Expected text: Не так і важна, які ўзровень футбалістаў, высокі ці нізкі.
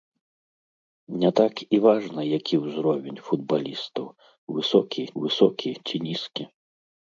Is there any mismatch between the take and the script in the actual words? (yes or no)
yes